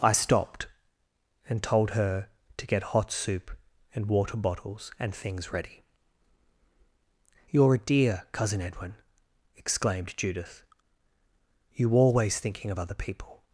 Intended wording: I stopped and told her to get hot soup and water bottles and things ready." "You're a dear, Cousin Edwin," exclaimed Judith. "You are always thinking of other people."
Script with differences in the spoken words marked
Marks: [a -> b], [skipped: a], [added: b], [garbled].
I stopped and told her to get hot soup and water bottles and things ready." "You're a dear, Cousin Edwin," exclaimed Judith. "You [skipped: are] always thinking of other people."